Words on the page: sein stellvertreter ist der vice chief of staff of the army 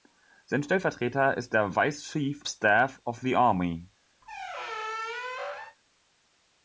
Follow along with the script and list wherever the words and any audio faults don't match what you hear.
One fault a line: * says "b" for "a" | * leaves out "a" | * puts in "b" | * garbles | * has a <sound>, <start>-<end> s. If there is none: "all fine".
* leaves out "of"
* has a squeak, 4.2-5.8 s